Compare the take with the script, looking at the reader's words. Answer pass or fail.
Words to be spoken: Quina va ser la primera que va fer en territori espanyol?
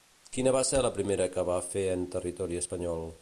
pass